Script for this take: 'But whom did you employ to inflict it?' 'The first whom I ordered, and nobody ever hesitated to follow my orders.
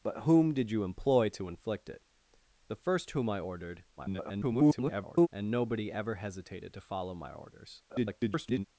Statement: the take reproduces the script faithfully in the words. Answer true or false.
false